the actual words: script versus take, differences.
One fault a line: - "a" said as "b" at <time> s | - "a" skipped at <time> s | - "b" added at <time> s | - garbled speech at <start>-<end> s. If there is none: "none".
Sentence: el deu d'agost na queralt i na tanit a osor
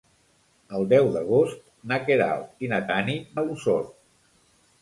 none